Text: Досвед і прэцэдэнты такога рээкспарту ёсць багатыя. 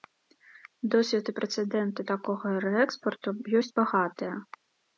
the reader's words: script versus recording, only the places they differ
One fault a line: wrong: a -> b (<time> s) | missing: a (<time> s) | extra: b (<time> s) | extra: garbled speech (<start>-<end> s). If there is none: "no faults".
no faults